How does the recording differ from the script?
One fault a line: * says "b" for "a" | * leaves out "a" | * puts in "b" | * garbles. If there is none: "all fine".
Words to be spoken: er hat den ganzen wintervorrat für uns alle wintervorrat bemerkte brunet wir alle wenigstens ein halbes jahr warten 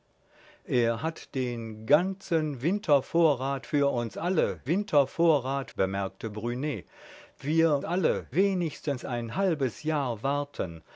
all fine